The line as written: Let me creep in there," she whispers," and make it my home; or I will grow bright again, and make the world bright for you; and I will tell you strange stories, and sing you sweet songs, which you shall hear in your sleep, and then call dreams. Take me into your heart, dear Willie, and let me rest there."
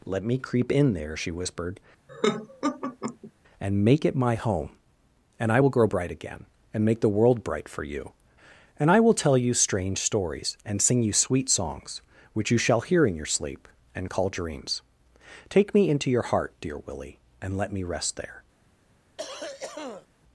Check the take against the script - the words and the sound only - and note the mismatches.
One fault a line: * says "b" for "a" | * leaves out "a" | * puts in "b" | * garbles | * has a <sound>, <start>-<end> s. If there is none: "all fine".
* says "whispered" for "whispers"
* has a laugh, 2.1-3.3 s
* says "and" for "or"
* leaves out "then"
* has a cough, 19.2-20.1 s